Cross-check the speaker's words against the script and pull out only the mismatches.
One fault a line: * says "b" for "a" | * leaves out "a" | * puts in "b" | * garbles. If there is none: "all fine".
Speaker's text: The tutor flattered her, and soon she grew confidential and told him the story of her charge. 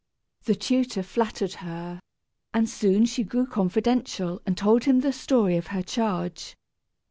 all fine